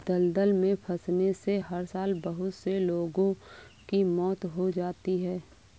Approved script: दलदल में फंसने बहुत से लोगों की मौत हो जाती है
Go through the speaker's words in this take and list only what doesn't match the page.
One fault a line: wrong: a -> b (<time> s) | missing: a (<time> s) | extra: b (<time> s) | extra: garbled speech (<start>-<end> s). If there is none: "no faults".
extra: से हर साल (1.3 s)